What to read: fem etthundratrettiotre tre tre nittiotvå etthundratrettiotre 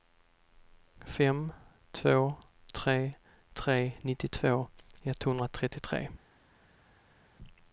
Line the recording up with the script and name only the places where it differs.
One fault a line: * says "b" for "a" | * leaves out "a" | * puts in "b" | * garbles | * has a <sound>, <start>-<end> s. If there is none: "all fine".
* says "två" for "etthundratrettiotre"